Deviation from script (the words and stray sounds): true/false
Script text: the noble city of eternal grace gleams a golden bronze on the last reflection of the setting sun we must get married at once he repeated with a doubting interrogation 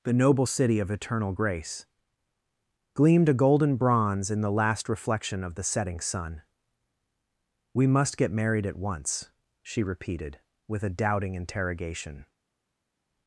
true